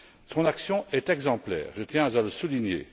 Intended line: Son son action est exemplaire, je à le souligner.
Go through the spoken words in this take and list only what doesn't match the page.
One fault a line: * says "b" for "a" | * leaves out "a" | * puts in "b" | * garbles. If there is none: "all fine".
* leaves out "son"
* puts in "tiens"